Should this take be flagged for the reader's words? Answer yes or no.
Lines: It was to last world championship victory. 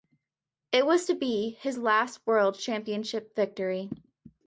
yes